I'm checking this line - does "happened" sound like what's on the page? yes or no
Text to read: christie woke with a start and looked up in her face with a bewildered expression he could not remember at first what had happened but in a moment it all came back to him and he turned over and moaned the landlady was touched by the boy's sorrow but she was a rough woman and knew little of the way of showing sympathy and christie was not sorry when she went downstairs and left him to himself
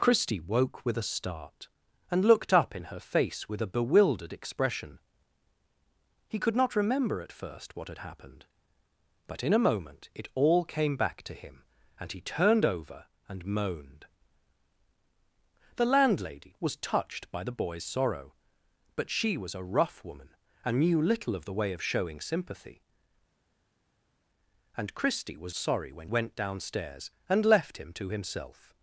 yes